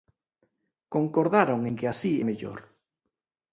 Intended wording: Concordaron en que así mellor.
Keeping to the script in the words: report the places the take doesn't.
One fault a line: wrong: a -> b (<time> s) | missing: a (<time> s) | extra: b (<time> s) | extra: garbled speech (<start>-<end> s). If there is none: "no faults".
no faults